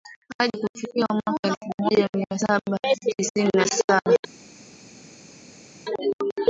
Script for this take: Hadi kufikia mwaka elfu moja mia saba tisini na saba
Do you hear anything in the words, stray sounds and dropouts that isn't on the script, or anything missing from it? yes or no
no